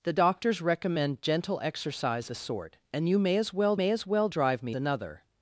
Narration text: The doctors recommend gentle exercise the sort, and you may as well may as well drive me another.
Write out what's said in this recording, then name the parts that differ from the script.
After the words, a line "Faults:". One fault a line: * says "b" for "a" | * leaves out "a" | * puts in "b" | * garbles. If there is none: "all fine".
The doctors recommend gentle exercise the sort, and you may as well may as well drive me another.
Faults:
all fine